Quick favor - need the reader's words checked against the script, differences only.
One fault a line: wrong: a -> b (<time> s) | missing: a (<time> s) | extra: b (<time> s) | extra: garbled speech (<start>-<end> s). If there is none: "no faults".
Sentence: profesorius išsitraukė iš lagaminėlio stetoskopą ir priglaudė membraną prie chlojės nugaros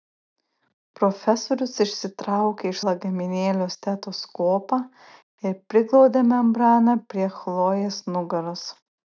no faults